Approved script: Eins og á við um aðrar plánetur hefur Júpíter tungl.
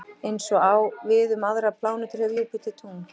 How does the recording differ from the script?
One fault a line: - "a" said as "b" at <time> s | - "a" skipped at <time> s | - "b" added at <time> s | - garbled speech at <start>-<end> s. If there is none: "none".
none